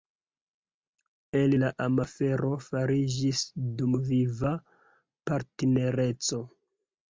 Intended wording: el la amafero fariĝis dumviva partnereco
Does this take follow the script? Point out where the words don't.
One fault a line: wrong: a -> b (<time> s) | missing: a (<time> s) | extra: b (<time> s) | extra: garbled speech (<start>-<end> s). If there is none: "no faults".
no faults